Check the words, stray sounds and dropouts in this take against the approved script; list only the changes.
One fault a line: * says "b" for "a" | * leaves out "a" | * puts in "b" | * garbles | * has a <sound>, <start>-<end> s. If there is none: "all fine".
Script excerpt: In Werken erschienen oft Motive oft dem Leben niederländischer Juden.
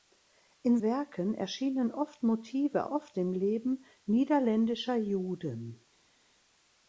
all fine